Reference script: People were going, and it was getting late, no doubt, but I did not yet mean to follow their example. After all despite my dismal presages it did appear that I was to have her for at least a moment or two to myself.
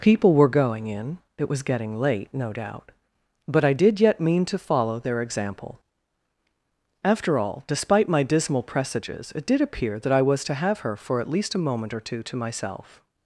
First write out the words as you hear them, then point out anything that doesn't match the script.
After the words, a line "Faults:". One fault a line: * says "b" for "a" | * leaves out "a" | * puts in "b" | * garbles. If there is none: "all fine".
People were going, in it was getting late, no doubt, but I did yet mean to follow their example. After all despite my dismal presages it did appear that I was to have her for at least a moment or two to myself.
Faults:
* says "in" for "and"
* leaves out "not"